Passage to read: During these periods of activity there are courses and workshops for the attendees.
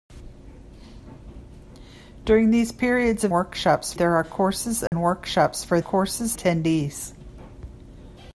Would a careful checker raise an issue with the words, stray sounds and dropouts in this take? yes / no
yes